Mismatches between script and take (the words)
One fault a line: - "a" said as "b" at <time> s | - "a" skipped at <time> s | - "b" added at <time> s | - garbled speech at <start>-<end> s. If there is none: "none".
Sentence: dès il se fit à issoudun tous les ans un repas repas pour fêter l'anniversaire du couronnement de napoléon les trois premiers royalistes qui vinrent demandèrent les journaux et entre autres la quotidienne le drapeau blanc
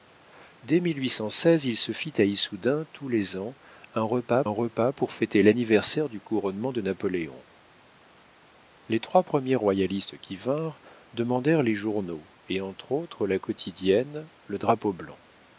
none